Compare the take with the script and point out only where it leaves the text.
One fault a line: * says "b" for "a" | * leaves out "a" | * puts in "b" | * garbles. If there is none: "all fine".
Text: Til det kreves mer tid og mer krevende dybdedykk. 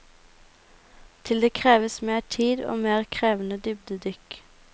all fine